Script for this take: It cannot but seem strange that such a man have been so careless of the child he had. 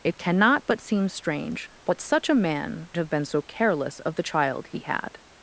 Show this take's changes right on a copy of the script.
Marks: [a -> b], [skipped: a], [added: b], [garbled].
It cannot but seem strange that such a man have been so careless of the child he had.